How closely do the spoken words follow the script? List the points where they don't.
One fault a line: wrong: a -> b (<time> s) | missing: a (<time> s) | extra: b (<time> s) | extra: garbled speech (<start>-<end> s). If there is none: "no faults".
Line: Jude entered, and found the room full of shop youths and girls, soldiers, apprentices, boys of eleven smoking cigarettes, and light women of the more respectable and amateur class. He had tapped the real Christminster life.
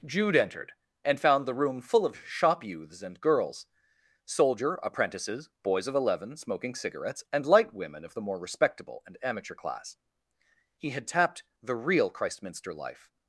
wrong: soldiers -> soldier (4.2 s)